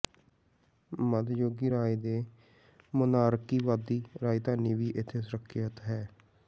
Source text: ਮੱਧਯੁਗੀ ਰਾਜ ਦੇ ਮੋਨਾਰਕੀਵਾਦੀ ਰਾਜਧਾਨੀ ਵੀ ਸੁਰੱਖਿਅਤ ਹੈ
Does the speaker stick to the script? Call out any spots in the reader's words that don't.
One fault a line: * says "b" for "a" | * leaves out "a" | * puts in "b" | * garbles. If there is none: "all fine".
* puts in "ਇੱਥੇ"